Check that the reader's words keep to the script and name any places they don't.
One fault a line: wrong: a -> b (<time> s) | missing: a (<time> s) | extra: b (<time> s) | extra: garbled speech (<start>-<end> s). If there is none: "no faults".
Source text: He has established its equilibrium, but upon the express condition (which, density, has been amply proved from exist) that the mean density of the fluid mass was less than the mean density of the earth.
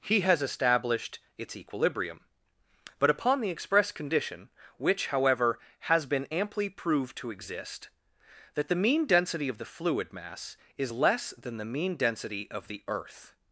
wrong: density -> however (5.1 s)
wrong: from -> to (7.2 s)
wrong: was -> is (10.8 s)